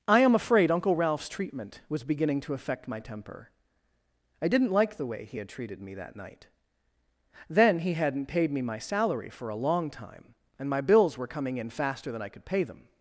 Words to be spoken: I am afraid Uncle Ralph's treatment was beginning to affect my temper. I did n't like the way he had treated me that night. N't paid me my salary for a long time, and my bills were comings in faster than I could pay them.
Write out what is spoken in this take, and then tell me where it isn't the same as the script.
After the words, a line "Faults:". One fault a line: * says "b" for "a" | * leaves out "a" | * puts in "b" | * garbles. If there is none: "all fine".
I am afraid Uncle Ralph's treatment was beginning to affect my temper. I did n't like the way he had treated me that night. Then he had n't paid me my salary for a long time, and my bills were coming in faster than I could pay them.
Faults:
* puts in "Then he had"
* says "coming" for "comings"